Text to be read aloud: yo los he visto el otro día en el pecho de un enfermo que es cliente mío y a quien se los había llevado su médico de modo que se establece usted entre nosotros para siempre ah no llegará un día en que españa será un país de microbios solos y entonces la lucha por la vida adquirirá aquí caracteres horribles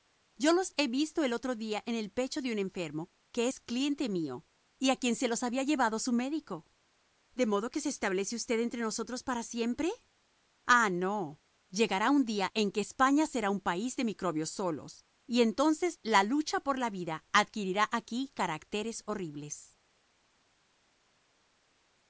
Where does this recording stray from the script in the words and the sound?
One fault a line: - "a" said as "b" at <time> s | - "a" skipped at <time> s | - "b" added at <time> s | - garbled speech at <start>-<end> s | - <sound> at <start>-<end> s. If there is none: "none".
none